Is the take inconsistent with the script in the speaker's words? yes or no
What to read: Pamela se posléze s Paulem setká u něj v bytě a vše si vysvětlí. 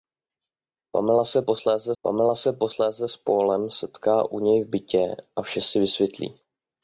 yes